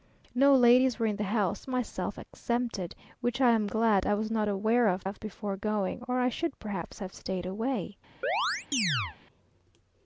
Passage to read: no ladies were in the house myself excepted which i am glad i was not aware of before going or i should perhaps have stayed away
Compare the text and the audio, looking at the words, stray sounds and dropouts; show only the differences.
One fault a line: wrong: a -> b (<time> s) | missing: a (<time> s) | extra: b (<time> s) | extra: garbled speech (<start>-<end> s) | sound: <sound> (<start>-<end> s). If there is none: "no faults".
extra: of (5.0 s)
sound: chirp (8.2-9.2 s)